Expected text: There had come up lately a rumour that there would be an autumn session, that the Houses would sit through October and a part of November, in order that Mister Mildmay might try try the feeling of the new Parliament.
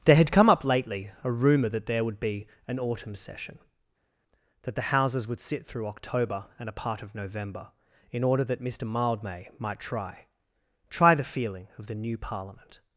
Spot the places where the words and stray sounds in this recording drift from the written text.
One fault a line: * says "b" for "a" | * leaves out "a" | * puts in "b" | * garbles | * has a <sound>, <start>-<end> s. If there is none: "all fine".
all fine